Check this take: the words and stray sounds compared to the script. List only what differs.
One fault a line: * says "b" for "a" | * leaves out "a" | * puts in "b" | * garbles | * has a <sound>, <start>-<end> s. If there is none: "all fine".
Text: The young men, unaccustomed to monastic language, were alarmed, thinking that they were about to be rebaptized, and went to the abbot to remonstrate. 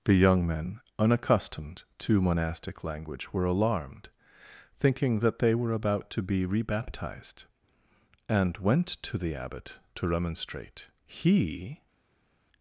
* puts in "He"